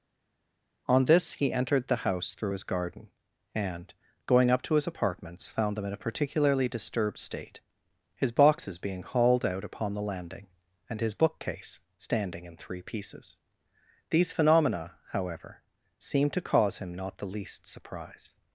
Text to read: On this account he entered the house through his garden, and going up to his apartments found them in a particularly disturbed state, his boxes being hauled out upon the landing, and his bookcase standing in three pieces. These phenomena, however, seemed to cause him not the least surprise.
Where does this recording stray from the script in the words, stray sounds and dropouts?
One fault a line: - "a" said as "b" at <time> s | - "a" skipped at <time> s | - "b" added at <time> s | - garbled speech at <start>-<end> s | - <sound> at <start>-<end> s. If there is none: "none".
- "account" skipped at 1.3 s